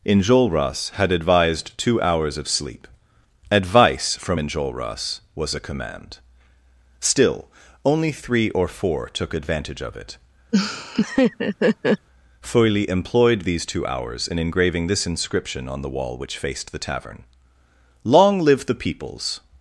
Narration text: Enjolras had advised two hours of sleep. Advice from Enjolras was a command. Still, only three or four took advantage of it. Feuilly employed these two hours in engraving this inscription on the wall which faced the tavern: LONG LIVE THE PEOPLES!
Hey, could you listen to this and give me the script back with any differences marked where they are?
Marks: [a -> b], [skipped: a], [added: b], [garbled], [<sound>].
Enjolras had advised two hours of sleep. Advice from Enjolras was a command. Still, only three or four took advantage of it. [laugh] Feuilly employed these two hours in engraving this inscription on the wall which faced the tavern: LONG LIVE THE PEOPLES!